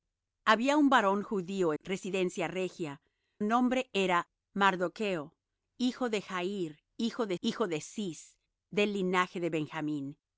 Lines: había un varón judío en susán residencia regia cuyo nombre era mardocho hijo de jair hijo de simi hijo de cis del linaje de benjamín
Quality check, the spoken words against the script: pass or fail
fail